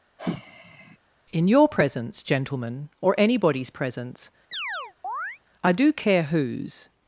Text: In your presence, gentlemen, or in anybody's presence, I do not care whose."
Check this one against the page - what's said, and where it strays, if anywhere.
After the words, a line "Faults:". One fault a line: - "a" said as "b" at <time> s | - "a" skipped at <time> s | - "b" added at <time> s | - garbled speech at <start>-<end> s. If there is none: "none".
In your presence, gentlemen, or anybody's presence, I do care whose."
Faults:
- "in" skipped at 3.1 s
- "not" skipped at 5.9 s